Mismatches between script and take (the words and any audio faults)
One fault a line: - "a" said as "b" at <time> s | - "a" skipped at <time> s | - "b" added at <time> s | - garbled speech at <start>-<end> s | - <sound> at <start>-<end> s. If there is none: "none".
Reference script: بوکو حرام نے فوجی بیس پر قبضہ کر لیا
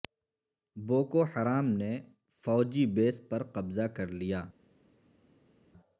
none